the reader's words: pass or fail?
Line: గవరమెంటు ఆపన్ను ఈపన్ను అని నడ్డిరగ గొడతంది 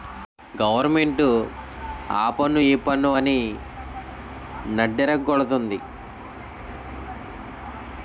pass